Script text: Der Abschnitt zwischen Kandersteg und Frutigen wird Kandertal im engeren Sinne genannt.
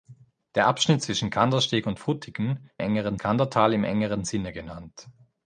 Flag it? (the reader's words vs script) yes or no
yes